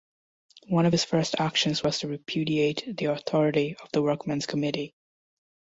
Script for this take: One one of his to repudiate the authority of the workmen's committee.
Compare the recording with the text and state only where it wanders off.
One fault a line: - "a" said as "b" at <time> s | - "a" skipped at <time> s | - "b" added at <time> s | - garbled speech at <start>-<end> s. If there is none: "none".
- "one" skipped at 0.9 s
- "first actions was" added at 1.0 s